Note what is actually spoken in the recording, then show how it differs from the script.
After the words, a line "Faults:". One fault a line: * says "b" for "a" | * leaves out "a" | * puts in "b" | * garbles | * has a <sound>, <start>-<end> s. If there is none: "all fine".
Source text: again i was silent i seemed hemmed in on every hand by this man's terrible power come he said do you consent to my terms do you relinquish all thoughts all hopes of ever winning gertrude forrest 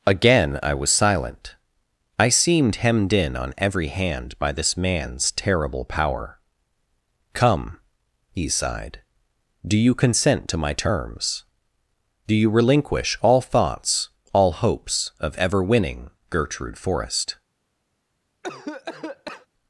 again i was silent i seemed hemmed in on every hand by this man's terrible power come he sighed do you consent to my terms do you relinquish all thoughts all hopes of ever winning gertrude forrest
Faults:
* says "sighed" for "said"
* has a cough, 18.4-19.5 s